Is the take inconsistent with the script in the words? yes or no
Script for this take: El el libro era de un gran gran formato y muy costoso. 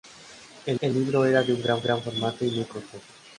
no